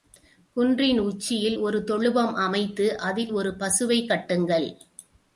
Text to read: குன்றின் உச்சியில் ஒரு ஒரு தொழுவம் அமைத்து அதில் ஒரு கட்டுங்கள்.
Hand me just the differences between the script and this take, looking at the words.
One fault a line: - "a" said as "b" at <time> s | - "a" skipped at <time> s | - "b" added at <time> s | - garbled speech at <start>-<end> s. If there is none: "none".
- "ஒரு" skipped at 1.8 s
- "பசுவைக்" added at 3.5 s